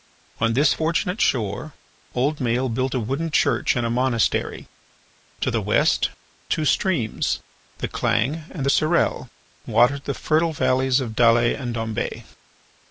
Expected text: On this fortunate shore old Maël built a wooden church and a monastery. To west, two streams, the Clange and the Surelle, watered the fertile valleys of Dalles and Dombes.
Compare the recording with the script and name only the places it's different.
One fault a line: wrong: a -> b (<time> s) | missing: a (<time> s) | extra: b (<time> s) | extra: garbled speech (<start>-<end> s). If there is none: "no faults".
extra: the (5.5 s)